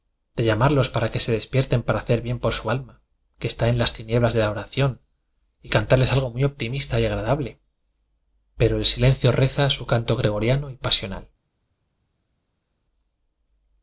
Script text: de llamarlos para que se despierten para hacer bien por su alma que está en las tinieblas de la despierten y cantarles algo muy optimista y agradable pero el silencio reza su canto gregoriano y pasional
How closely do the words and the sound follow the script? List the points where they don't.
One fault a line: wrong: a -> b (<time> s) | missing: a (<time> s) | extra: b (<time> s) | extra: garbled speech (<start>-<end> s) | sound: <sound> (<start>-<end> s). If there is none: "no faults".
wrong: despierten -> oración (4.5 s)